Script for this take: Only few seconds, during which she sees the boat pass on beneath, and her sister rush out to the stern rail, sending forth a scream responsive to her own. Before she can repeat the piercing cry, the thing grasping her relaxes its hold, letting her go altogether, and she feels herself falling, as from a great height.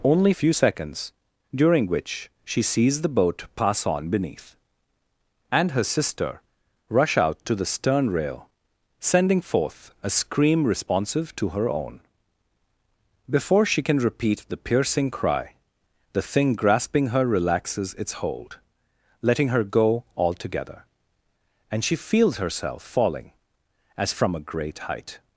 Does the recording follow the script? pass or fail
pass